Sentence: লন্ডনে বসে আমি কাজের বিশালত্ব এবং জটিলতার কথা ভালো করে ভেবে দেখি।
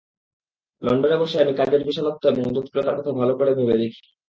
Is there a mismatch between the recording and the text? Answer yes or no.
no